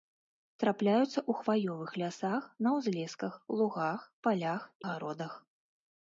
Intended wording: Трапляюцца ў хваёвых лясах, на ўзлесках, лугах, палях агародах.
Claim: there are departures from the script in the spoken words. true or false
false